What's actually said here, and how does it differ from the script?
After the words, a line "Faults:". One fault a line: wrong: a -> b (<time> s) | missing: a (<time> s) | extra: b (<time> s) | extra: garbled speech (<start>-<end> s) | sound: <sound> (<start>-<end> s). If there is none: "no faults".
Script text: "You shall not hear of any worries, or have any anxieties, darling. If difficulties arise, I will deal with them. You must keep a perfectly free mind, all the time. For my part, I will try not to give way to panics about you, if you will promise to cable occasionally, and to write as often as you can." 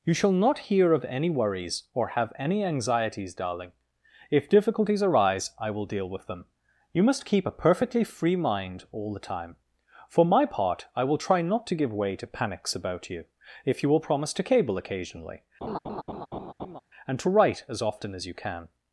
"You shall not hear of any worries, or have any anxieties, darling. If difficulties arise, I will deal with them. You must keep a perfectly free mind, all the time. For my part, I will try not to give way to panics about you, if you will promise to cable occasionally, and to write as often as you can."
Faults:
sound: laugh (15.6-16.8 s)